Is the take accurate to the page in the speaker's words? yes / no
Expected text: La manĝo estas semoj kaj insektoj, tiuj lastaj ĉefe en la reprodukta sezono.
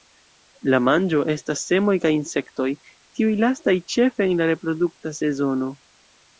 yes